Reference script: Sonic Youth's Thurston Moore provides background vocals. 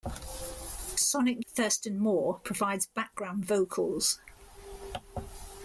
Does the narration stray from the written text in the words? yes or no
yes